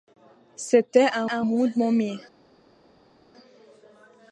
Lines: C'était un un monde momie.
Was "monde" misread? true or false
false